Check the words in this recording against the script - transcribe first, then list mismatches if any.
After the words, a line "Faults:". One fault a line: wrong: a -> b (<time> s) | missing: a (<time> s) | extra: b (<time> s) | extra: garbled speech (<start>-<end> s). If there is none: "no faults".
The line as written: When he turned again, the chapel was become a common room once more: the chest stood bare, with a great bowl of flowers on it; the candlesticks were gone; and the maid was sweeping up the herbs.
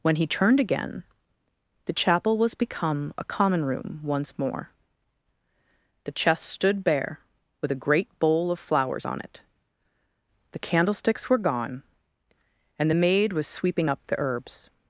When he turned again, the chapel was become a common room once more: the chest stood bare, with a great bowl of flowers on it; the candlesticks were gone; and the maid was sweeping up the herbs.
Faults:
no faults